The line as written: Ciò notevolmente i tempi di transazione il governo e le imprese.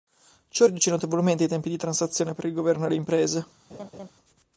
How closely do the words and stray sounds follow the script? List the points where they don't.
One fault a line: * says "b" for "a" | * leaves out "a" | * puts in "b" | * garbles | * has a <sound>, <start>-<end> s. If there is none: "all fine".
* puts in "riduce"
* puts in "per"
* has a laugh, 3.7-4.1 s